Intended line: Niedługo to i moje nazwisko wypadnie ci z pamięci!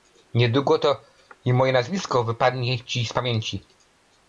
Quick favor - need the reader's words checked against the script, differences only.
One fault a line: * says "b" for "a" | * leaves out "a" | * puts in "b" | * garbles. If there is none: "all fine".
all fine